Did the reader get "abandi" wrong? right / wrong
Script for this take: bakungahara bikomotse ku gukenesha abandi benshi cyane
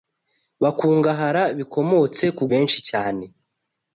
wrong